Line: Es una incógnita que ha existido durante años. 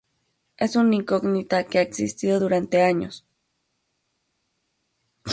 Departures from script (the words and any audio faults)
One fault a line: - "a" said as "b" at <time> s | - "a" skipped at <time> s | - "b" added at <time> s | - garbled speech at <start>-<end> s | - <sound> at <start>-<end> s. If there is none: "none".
none